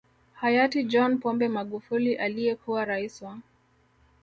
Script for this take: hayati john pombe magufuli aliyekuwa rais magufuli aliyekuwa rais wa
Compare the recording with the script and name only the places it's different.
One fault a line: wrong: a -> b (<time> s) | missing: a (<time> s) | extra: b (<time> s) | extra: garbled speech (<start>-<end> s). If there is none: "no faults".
missing: magufuli aliyekuwa rais (3.2 s)